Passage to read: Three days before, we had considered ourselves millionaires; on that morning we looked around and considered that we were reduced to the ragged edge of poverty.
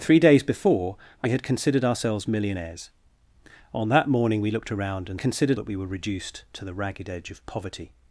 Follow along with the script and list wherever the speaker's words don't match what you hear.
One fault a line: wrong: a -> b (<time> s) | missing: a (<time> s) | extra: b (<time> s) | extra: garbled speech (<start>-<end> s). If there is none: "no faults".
no faults